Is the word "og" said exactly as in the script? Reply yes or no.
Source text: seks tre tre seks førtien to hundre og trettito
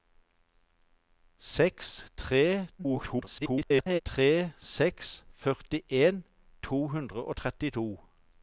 yes